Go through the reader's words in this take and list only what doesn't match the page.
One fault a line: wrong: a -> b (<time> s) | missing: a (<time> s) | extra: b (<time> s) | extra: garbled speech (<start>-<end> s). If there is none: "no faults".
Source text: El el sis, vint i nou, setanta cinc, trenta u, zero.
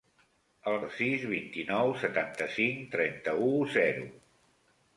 no faults